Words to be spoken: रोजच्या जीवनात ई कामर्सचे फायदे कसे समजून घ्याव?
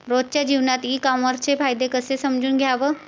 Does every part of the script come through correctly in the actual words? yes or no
yes